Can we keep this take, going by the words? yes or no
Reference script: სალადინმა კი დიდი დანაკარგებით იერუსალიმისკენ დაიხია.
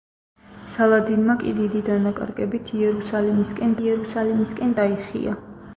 no